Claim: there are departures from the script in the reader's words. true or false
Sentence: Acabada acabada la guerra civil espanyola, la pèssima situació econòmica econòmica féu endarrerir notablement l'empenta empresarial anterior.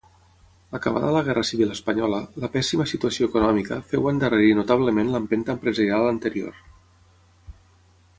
true